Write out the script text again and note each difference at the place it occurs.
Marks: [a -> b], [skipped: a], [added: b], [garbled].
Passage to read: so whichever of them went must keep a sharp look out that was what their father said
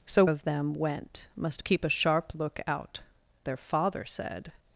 so [skipped: whichever] of them went must keep a sharp look out [skipped: that was what] their father said